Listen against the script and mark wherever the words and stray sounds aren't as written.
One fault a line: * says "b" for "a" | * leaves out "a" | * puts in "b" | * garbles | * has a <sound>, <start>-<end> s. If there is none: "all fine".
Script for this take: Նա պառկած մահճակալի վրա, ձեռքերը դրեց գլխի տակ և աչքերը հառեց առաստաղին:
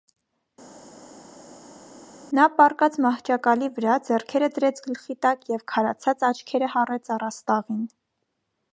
* puts in "քարացած"